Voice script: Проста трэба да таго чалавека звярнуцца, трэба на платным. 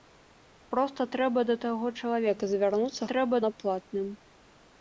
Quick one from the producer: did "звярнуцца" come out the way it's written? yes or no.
yes